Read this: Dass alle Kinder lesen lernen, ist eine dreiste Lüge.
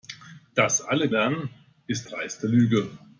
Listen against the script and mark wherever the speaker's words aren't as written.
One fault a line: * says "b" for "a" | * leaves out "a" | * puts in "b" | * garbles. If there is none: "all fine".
* leaves out "Kinder lesen"
* leaves out "eine"